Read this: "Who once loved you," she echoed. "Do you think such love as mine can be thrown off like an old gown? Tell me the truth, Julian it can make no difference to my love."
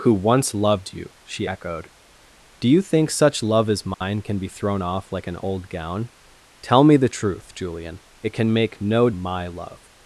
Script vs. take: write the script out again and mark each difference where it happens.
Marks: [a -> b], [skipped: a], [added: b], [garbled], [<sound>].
"Who once loved you," she echoed. "Do you think such love as mine [dropout] can be thrown off like an old gown? Tell me the truth, Julian it can make no [skipped: difference to] my love."